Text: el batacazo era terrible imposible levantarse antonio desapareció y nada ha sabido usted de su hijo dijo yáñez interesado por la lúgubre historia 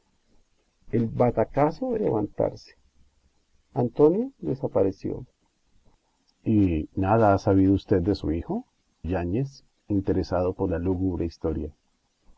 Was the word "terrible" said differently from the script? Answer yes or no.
yes